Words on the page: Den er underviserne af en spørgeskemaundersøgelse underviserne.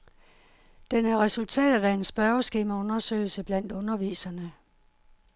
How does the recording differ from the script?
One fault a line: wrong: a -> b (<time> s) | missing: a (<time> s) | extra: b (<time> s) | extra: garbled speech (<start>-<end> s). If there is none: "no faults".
wrong: underviserne -> resultatet (1.2 s)
extra: blandt (3.4 s)